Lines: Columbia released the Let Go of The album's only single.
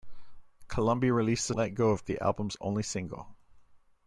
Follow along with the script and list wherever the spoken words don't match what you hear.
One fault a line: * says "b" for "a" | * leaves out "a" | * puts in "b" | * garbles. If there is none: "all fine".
all fine